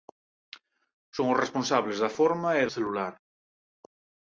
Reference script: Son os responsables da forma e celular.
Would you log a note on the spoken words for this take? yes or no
no